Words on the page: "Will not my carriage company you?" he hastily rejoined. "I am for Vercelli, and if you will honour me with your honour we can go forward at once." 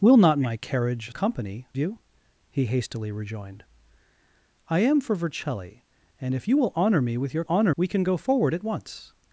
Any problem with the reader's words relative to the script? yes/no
no